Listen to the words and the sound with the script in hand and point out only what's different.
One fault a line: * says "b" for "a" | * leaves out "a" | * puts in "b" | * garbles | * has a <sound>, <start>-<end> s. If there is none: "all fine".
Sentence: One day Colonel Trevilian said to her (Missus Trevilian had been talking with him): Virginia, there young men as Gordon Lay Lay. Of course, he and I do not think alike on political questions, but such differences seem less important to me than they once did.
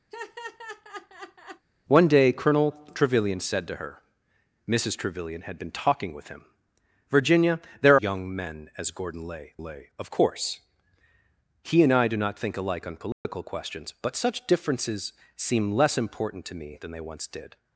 * has a laugh, 0.1-1.7 s
* has a dropout, 13.1-13.2 s